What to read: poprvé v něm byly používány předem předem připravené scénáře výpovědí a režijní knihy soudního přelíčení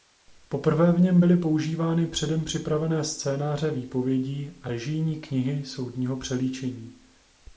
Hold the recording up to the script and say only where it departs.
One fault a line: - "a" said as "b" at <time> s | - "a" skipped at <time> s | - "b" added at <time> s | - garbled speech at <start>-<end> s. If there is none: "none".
- "předem" skipped at 2.4 s